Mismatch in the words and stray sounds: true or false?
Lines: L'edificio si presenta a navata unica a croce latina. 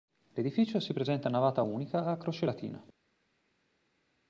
false